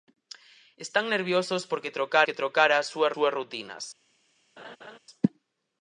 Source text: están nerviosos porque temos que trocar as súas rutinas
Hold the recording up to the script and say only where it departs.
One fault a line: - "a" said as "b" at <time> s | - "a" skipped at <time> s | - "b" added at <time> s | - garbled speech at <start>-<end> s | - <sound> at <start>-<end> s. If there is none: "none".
- "temos" said as "trocar" at 2.0 s
- "súas" added at 3.1 s
- laugh at 4.6-5.0 s